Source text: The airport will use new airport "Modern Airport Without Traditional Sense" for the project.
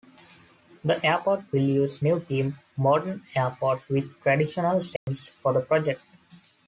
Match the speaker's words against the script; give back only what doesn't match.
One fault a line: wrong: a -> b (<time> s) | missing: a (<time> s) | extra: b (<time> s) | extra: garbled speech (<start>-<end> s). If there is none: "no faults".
wrong: airport -> theme (2.2 s)
wrong: Without -> With (3.9 s)